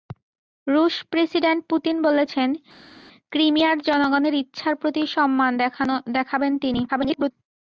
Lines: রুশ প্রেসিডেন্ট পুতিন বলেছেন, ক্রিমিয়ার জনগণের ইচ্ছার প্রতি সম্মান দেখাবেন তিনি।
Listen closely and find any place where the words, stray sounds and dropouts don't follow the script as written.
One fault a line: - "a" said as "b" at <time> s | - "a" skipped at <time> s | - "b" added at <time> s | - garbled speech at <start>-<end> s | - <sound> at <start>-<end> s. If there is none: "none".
- garbled speech at 6.9-7.3 s